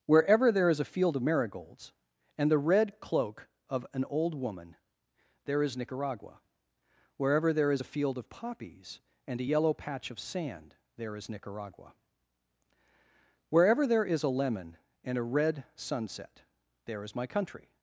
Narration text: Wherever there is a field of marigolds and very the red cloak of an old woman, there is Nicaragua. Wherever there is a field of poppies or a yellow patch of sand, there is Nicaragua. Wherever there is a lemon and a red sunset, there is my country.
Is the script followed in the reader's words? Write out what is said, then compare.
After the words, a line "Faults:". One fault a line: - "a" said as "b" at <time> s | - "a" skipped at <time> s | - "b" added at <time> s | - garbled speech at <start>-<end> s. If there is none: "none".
Wherever there is a field of marigolds and the red cloak of an old woman, there is Nicaragua. Wherever there is a field of poppies and a yellow patch of sand, there is Nicaragua. Wherever there is a lemon and a red sunset, there is my country.
Faults:
- "very" skipped at 2.5 s
- "or" said as "and" at 9.3 s